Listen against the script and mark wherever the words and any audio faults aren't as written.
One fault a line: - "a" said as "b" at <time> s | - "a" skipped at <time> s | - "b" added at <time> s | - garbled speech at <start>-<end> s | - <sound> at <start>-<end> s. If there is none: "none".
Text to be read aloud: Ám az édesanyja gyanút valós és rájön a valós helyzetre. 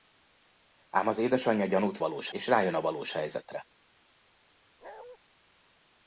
- bark at 4.8-5.2 s